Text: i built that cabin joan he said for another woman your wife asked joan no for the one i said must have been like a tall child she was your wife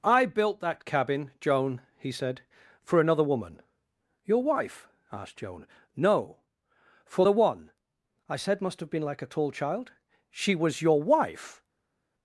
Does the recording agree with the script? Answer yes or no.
yes